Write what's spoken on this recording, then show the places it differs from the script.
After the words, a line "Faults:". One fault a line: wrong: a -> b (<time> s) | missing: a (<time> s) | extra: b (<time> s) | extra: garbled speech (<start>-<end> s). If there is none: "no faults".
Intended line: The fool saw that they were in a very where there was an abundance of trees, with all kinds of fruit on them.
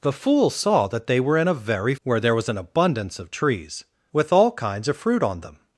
The fool saw that they were in a very where there was an abundance of trees, with all kinds of fruit on them.
Faults:
no faults